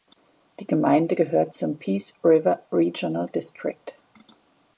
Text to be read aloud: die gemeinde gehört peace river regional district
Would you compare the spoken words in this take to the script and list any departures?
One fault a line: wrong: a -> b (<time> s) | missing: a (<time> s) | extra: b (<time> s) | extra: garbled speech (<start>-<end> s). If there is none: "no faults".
extra: zum (1.5 s)